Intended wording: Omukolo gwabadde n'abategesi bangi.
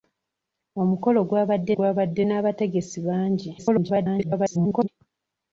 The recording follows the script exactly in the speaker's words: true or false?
false